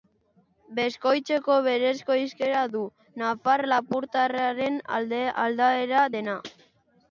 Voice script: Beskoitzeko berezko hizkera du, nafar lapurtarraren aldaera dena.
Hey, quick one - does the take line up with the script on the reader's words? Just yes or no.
yes